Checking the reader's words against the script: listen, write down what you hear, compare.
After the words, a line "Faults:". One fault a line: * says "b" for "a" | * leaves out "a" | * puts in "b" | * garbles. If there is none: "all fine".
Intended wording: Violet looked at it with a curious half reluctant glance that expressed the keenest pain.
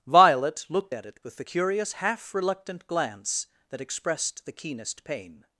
Violet looked at it with the curious half reluctant glance that expressed the keenest pain.
Faults:
* says "the" for "a"